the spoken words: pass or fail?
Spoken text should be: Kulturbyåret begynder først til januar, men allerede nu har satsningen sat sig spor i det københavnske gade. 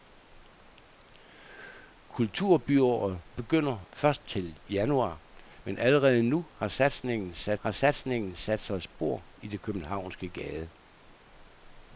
fail